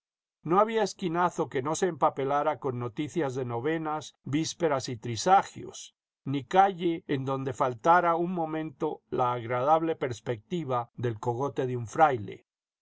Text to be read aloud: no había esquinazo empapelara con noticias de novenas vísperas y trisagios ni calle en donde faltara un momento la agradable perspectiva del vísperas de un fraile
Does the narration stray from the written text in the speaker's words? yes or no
yes